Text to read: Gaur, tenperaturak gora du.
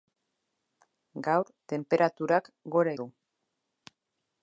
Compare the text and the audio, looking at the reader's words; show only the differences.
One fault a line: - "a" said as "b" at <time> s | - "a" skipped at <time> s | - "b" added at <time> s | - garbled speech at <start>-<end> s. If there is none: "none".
none